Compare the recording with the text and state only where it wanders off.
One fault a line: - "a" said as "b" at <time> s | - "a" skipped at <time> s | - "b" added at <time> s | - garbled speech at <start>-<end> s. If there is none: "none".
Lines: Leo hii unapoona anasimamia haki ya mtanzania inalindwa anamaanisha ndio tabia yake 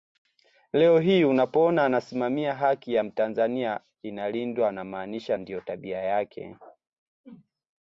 none